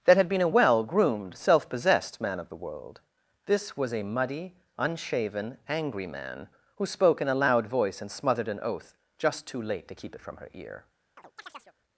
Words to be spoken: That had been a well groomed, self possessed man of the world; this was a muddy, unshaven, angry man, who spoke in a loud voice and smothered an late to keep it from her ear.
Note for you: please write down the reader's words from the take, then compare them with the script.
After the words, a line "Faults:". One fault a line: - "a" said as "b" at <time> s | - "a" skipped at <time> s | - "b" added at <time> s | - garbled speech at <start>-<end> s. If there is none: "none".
That had been a well groomed, self possessed man of the world; this was a muddy, unshaven, angry man, who spoke in a loud voice and smothered an oath just too late to keep it from her ear.
Faults:
- "oath just too" added at 8.6 s